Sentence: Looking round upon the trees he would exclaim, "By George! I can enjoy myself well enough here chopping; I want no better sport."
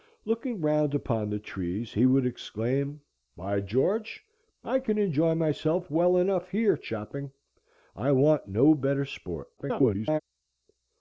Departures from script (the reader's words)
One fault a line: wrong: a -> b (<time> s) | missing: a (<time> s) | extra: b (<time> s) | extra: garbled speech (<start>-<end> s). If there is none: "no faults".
extra: garbled speech (9.6-10.2 s)